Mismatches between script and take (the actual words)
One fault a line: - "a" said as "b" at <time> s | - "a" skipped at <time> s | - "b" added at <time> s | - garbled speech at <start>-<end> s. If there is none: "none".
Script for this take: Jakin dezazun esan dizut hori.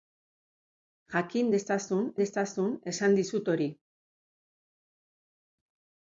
- "dezazun" added at 2.2 s